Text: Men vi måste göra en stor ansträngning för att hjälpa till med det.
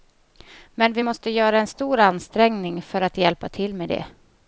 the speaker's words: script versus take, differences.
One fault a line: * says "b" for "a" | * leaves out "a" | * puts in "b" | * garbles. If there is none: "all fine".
all fine